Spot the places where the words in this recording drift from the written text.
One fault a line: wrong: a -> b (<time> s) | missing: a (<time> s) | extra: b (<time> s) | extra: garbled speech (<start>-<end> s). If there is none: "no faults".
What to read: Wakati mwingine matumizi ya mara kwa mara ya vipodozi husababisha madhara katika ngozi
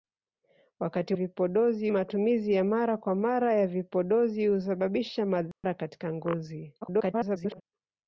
wrong: mwingine -> vipodozi (1.1 s)
extra: garbled speech (6.8-7.6 s)